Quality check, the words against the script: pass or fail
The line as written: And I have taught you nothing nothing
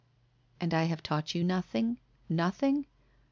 pass